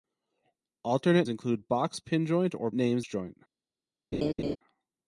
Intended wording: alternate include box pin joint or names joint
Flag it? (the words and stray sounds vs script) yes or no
yes